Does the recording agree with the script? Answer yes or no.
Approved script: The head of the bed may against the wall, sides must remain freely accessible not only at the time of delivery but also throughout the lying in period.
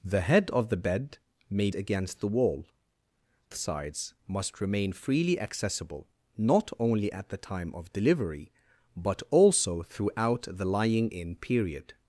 yes